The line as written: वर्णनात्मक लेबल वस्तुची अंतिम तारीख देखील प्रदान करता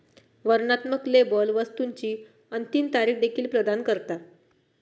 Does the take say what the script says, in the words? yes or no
yes